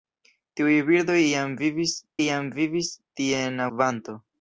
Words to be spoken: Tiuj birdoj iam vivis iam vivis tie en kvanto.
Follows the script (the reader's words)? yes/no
yes